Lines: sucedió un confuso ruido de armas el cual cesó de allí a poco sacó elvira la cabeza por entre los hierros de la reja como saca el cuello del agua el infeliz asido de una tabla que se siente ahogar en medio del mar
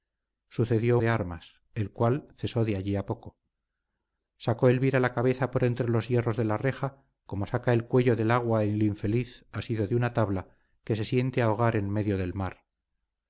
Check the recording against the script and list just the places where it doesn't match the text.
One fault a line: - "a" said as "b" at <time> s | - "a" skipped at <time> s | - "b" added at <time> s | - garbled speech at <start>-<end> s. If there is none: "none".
- "un confuso ruido" skipped at 1.0 s